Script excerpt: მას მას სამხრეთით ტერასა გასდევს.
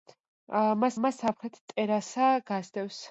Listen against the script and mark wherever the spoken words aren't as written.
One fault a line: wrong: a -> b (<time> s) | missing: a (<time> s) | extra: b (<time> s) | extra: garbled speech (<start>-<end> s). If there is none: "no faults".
no faults